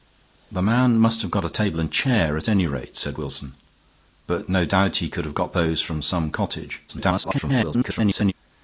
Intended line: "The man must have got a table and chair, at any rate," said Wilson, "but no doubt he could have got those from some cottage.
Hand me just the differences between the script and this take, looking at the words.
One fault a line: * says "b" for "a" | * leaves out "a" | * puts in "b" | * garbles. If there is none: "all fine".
* garbles